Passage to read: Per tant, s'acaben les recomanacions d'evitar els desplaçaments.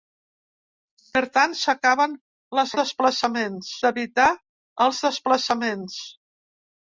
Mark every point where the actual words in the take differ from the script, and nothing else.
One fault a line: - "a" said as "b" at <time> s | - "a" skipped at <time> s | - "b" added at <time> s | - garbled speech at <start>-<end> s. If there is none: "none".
- "recomanacions" said as "desplaçaments" at 2.8 s